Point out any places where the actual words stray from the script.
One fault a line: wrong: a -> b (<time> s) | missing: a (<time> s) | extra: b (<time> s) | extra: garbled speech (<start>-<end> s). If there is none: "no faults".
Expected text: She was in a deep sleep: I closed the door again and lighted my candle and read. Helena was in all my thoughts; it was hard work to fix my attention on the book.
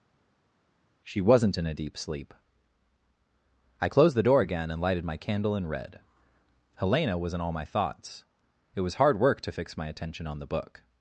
wrong: was -> wasn't (1.2 s)